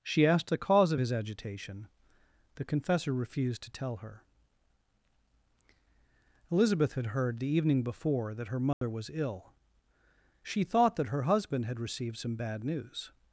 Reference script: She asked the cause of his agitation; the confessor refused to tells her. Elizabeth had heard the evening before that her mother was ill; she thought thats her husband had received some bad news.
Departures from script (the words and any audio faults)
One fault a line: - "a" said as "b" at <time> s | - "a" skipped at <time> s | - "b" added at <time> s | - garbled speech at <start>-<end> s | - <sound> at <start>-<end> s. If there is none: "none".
- "tells" said as "tell" at 3.7 s
- dropout at 8.7-8.8 s
- "thats" said as "that" at 10.9 s